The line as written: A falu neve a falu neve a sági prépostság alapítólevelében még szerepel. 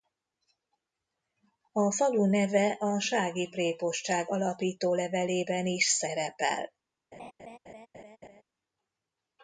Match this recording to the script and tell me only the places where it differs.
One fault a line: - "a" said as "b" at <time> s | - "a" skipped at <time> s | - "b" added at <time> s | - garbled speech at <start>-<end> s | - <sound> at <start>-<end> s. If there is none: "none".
- "falu neve a" skipped at 3.0 s
- "még" said as "is" at 5.7 s
- laugh at 7.1-8.4 s